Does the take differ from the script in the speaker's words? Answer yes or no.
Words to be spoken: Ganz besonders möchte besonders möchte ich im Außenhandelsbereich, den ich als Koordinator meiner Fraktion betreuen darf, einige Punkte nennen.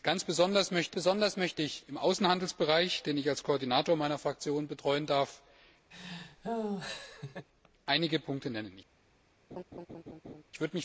no